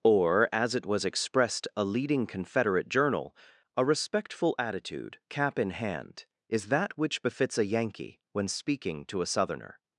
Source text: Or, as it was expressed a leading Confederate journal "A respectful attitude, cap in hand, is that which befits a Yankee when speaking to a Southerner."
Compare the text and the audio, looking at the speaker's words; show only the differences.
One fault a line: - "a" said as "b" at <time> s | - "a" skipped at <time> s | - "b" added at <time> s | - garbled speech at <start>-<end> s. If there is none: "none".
none